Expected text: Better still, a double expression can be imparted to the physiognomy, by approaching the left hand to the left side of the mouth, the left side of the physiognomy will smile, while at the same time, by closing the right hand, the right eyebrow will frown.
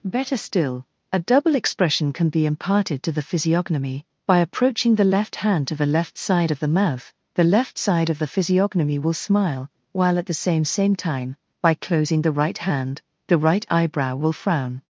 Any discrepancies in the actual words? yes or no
yes